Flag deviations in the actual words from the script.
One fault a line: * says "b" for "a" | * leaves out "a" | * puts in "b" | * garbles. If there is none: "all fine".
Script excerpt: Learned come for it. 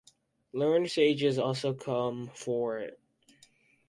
* puts in "sages also"